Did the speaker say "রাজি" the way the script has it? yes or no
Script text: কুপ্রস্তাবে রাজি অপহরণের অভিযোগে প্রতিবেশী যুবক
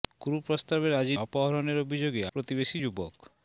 yes